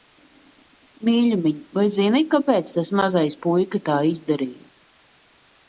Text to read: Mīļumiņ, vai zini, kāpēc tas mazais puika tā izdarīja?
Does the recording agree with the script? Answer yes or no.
yes